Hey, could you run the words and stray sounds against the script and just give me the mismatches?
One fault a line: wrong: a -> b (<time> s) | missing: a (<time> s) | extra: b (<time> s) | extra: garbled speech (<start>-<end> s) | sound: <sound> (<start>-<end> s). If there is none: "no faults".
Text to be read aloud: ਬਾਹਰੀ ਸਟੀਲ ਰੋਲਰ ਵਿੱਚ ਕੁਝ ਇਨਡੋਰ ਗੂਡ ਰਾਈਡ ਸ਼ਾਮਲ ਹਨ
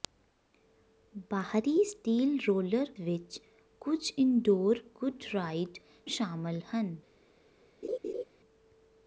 sound: laugh (7.8-8.2 s)